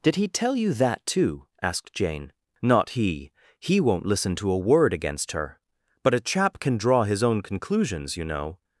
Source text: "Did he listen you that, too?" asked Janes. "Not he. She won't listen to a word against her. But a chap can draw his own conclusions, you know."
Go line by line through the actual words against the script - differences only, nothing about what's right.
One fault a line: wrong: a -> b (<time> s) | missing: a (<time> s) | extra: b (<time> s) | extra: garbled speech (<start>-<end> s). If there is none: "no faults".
wrong: listen -> tell (0.3 s)
wrong: Janes -> Jane (1.9 s)
wrong: She -> He (3.6 s)